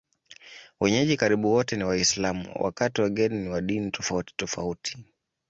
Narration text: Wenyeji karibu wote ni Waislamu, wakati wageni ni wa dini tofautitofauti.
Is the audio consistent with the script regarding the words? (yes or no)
yes